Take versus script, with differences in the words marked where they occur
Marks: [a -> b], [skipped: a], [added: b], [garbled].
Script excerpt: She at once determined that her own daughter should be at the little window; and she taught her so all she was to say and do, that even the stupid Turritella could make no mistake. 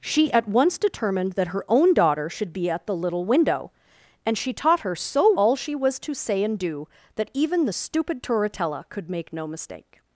She at once determined that her own daughter should be at the little window; and she taught her so all she was to say and do, that even the stupid Turritella could make no mistake.